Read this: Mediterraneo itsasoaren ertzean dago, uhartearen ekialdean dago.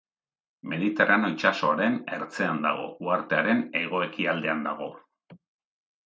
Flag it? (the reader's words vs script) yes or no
yes